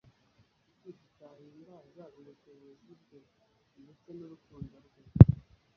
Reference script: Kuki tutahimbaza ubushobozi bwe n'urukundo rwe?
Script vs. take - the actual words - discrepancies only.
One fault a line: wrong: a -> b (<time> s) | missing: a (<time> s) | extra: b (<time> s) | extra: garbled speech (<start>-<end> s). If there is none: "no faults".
extra: ndetse (3.8 s)